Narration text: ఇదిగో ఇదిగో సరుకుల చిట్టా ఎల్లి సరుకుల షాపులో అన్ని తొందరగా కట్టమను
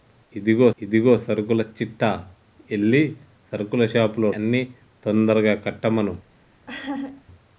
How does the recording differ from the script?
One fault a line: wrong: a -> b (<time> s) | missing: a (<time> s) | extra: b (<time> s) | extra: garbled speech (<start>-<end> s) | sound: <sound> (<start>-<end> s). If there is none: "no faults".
sound: laugh (6.7-7.2 s)